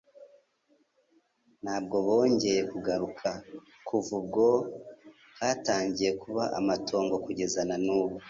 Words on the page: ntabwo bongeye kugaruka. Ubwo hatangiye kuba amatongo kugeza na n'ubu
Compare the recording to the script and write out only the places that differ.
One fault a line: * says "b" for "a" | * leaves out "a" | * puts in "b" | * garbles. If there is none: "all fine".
* puts in "Kuva"